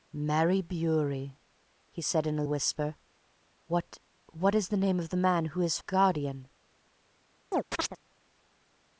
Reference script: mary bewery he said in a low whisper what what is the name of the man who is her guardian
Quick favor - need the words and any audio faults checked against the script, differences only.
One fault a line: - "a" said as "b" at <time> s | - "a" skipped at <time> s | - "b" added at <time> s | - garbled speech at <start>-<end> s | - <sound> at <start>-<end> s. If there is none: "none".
- "low" skipped at 2.4 s
- "her" skipped at 5.8 s
- chirp at 7.5-8.0 s